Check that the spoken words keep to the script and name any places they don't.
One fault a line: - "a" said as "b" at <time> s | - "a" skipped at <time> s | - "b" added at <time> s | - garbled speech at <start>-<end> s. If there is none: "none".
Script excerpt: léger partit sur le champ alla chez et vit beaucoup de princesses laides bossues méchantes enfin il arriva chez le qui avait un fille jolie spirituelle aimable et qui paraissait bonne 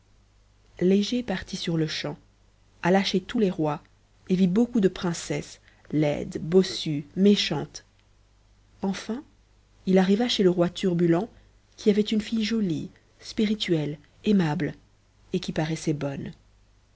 - "tous les rois" added at 3.2 s
- "roi turbulent" added at 10.5 s
- "un" said as "une" at 12.0 s